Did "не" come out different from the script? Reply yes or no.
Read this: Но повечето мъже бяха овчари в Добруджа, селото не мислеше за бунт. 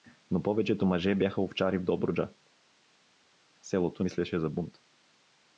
yes